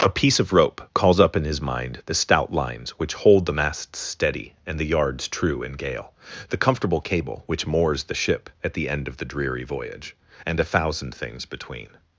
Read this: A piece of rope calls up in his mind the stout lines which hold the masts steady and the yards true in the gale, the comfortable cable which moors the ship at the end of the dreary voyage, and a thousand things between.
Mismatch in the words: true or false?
true